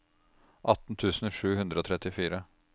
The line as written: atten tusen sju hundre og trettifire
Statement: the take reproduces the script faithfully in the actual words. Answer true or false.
true